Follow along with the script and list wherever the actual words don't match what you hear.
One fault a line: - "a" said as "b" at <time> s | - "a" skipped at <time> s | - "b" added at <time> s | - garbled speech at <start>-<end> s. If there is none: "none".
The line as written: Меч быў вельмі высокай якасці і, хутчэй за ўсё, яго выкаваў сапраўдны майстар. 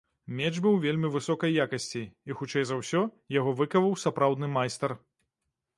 none